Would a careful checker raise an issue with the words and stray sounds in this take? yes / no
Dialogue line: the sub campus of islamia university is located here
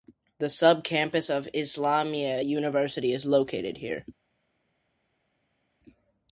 no